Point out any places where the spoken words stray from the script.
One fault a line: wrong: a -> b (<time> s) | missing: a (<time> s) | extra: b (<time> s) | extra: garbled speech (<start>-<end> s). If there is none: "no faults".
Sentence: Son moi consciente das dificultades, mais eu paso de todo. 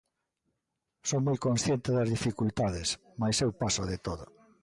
no faults